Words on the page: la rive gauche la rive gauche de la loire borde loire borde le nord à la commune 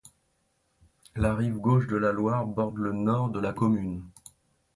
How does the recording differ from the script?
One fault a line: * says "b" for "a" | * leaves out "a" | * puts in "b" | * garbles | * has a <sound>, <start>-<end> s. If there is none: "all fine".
* leaves out "la rive gauche"
* leaves out "loire borde"
* says "de" for "à"